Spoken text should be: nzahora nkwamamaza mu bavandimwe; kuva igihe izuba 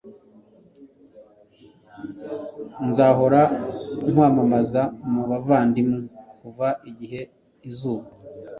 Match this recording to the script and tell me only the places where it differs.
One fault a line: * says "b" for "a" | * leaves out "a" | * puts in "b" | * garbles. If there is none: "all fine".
all fine